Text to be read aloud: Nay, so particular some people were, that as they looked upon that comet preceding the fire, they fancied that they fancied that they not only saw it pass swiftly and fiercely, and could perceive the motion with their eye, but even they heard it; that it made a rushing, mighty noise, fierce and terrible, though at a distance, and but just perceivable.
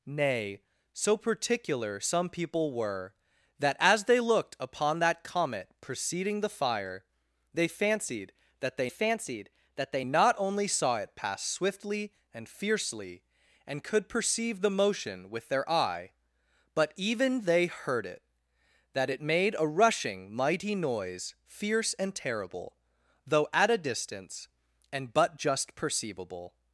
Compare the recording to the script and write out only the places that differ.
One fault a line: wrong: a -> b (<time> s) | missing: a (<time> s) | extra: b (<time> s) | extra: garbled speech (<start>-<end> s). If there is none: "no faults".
no faults